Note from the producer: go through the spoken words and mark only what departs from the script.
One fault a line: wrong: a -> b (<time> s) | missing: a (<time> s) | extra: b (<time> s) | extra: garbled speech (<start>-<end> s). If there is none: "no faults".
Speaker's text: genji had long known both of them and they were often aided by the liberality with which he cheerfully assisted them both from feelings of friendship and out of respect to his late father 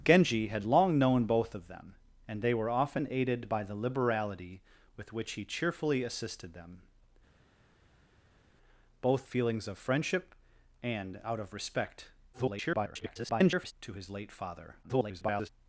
missing: from (9.3 s)
extra: garbled speech (12.3-13.7 s)
extra: garbled speech (14.8-15.5 s)